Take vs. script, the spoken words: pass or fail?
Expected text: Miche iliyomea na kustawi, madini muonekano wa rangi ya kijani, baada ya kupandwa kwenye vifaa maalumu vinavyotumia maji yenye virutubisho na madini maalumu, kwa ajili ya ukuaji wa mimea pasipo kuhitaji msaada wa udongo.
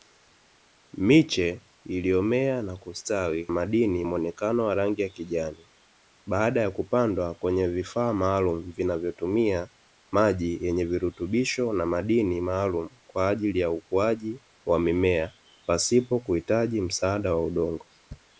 pass